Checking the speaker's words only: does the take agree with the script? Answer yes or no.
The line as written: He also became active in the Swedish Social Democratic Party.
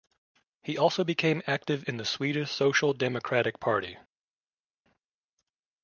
yes